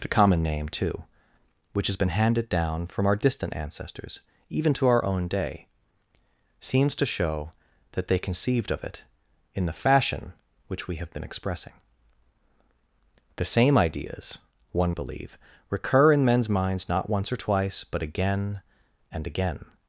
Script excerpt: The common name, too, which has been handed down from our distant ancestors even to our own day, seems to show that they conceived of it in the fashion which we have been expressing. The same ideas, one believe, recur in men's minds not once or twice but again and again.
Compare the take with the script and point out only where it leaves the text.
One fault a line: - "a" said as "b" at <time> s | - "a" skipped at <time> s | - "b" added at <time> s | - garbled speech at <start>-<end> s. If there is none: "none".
none